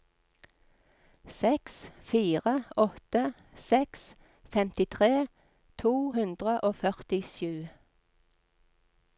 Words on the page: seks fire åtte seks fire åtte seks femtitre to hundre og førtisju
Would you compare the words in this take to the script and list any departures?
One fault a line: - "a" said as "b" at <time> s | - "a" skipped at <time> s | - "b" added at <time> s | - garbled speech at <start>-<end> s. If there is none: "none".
- "fire åtte seks" skipped at 4.1 s